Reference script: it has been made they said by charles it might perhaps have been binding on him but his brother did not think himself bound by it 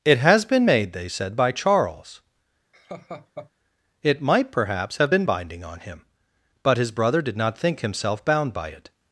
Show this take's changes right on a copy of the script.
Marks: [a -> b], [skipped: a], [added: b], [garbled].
it has been made they said by charles it might perhaps have been binding on him but his brother did not think himself bound by it